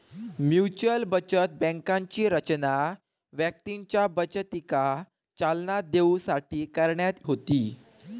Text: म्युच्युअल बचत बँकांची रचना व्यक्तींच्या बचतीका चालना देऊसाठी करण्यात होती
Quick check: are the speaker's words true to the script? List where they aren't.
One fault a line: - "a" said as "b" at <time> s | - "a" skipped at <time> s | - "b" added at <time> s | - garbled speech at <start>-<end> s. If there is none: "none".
none